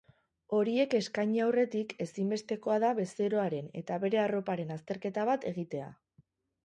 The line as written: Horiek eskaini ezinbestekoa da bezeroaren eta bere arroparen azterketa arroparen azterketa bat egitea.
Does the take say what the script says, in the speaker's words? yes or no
no